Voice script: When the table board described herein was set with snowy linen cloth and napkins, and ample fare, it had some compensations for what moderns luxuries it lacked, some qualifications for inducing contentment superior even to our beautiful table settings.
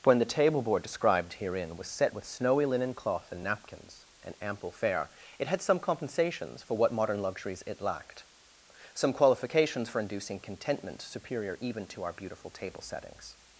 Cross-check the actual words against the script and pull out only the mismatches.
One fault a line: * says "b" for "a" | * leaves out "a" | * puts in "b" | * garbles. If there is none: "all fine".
* says "modern" for "moderns"